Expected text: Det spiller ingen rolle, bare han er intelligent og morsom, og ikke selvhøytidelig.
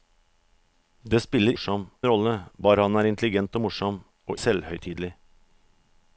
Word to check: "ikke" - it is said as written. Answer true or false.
false